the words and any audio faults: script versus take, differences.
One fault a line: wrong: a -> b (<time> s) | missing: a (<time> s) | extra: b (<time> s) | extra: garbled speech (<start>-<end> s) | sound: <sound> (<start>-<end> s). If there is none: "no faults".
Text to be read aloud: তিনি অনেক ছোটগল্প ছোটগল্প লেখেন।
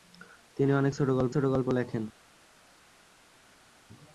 no faults